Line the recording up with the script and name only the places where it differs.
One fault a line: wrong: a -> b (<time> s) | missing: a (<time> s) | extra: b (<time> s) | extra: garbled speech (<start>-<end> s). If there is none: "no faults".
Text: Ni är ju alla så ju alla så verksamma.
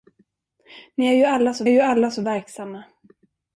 no faults